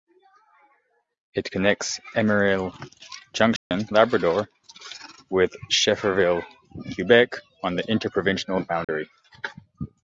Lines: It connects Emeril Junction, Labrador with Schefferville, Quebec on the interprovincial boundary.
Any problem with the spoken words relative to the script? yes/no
no